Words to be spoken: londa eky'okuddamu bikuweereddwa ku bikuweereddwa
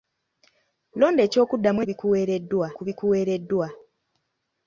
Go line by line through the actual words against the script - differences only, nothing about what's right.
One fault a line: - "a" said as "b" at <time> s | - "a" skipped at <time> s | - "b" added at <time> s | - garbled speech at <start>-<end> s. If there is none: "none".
none